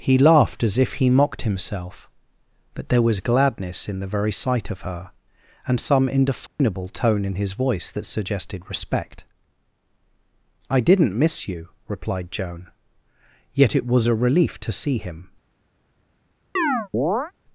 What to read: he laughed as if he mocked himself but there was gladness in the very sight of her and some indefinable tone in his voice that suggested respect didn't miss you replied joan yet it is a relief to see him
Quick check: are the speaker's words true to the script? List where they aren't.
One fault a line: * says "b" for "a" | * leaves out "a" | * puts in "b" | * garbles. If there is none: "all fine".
* puts in "i"
* says "was" for "is"